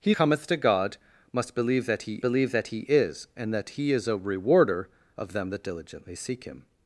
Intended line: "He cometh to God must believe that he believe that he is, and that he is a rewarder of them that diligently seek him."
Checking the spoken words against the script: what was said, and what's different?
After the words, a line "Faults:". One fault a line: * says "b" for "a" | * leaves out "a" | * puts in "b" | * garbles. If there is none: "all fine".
"He cometh to God must believe that he believe that he is, and that he is a rewarder of them that diligently seek him."
Faults:
all fine